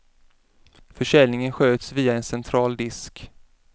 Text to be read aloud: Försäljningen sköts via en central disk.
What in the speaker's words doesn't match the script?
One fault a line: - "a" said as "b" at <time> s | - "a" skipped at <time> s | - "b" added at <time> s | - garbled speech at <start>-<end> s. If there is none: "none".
none